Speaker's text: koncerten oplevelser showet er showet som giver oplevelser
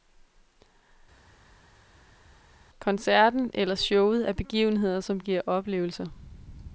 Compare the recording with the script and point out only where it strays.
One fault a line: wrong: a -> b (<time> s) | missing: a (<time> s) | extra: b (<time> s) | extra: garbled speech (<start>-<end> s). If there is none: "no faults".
wrong: oplevelser -> eller (3.5 s)
wrong: showet -> begivenheder (4.3 s)